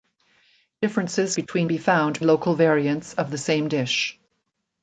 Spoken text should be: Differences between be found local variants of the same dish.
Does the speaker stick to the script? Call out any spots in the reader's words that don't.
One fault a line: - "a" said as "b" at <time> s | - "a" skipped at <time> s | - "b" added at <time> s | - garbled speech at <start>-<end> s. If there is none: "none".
none